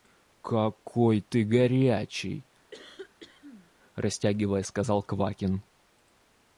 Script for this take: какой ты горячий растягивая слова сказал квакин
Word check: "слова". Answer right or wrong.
wrong